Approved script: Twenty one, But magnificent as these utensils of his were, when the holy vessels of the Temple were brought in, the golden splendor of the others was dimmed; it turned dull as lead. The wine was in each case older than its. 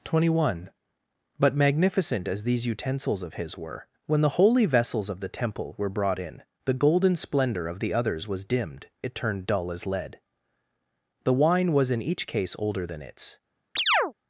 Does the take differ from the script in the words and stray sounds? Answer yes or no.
yes